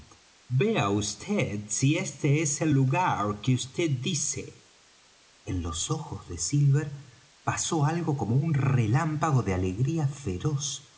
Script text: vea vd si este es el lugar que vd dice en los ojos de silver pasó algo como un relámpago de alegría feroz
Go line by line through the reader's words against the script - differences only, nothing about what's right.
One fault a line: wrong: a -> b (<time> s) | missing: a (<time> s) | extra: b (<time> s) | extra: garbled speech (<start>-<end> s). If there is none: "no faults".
no faults